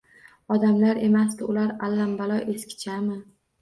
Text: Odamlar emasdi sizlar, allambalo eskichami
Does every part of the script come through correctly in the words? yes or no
no